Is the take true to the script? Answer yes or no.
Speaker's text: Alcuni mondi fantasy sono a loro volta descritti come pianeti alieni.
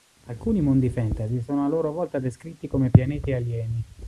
yes